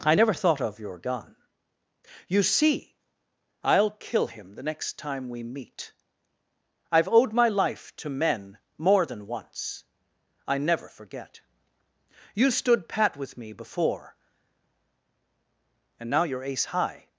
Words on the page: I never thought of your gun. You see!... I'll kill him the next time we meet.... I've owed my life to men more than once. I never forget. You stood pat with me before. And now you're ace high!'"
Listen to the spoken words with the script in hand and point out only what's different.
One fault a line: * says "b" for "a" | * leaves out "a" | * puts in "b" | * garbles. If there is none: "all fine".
all fine